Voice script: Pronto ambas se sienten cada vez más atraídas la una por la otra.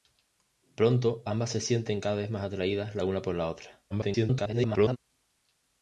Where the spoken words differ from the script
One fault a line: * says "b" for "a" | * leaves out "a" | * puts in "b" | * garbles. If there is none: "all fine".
* garbles